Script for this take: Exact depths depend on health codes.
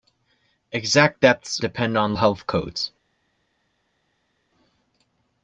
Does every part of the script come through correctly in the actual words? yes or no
yes